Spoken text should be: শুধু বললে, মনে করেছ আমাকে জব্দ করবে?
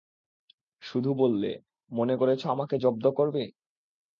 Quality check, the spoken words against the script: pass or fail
pass